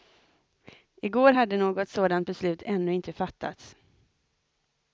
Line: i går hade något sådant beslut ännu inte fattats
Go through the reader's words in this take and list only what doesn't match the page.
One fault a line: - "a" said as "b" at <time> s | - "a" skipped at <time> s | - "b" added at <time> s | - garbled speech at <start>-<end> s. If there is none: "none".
none